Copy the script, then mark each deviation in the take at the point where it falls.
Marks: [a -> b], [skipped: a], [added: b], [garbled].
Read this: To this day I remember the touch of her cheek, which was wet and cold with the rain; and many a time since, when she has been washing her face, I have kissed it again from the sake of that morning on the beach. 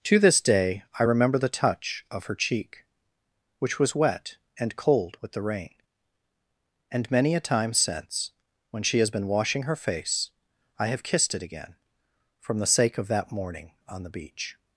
To this day I remember the touch of her cheek, which was wet and cold with the rain; and many a time since, when she has been washing her face, I have kissed it again from the sake of that morning on the beach.